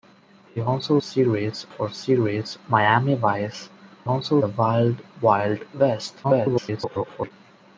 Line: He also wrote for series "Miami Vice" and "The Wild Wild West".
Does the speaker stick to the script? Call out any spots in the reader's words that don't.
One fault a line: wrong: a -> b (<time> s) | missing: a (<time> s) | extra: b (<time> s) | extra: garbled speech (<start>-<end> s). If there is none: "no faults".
wrong: wrote -> series (1.0 s)
wrong: and -> also (4.0 s)
extra: garbled speech (6.2-7.3 s)